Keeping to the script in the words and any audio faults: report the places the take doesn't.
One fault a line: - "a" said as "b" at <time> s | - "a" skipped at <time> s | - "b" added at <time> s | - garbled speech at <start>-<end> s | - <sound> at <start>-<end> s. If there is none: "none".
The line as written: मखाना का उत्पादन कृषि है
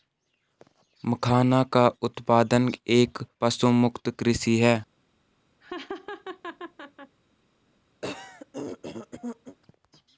- "एक पशुमुक्त" added at 3.0 s
- laugh at 5.6-7.2 s
- throat clearing at 8.0-9.6 s